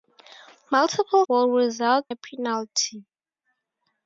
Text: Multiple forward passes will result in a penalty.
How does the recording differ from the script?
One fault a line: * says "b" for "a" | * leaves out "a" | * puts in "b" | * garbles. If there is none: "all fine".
* leaves out "forward passes"
* leaves out "in"